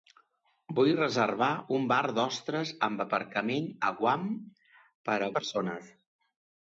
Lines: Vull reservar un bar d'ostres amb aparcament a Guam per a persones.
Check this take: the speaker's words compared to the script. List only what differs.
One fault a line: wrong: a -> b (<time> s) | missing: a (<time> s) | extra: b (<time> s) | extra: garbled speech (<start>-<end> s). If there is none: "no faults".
no faults